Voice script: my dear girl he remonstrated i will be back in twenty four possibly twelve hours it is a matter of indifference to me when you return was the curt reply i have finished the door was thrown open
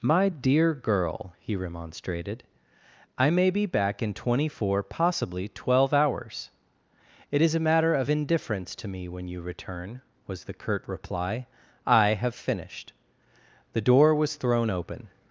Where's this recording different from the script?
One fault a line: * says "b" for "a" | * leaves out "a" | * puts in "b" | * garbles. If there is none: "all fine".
* says "may" for "will"